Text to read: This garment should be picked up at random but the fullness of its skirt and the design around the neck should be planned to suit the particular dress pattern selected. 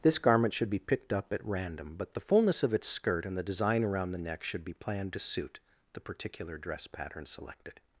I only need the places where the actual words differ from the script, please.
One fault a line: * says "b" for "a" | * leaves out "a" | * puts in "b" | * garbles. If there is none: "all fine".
all fine